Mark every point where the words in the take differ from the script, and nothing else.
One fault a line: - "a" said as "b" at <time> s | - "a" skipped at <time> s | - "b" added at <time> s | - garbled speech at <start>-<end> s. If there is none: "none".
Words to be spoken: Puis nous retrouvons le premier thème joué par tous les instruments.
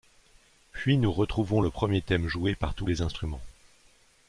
none